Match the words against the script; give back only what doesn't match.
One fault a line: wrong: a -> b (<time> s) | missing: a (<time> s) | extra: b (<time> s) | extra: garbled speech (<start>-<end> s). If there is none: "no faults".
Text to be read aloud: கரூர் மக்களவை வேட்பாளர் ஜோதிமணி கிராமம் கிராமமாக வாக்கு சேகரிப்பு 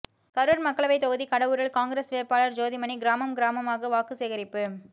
extra: தொகுதி கடவூரில் காங்கிரஸ் (1.0 s)